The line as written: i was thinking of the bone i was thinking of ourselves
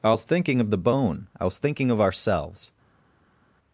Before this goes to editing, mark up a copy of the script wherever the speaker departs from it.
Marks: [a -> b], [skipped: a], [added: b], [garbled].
i was thinking of the bone i was thinking of ourselves